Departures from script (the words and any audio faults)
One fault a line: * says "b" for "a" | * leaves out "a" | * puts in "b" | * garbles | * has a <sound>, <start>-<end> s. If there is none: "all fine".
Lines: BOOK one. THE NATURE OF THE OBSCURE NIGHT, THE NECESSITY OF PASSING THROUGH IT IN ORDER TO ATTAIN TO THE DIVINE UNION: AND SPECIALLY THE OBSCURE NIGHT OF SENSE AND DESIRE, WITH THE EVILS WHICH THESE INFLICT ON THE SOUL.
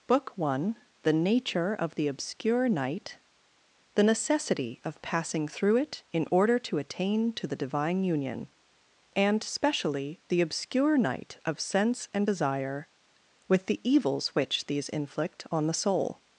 all fine